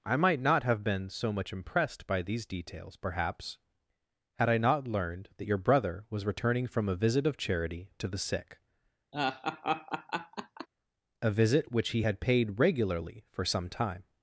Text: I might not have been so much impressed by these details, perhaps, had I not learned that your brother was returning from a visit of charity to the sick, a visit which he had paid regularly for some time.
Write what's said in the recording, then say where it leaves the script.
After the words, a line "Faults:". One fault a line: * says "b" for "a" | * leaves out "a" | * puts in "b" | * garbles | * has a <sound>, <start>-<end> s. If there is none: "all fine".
I might not have been so much impressed by these details, perhaps, had I not learned that your brother was returning from a visit of charity to the sick, a visit which he had paid regularly for some time.
Faults:
* has a laugh, 9.1-10.7 s